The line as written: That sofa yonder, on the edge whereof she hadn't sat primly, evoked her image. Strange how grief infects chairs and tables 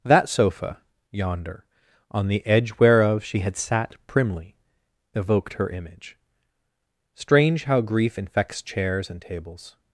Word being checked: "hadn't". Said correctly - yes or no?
no